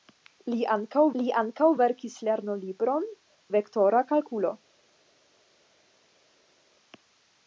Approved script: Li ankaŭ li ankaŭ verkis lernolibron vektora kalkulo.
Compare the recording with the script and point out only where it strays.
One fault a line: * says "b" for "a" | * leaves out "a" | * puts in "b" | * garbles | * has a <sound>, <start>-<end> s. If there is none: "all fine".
all fine